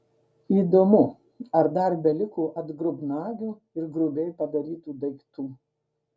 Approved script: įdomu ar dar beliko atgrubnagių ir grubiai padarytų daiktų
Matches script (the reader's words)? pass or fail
pass